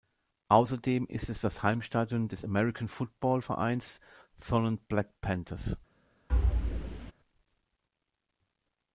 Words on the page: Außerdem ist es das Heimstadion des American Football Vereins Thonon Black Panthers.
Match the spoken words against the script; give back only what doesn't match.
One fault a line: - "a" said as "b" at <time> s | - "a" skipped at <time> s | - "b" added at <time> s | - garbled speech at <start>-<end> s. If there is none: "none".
none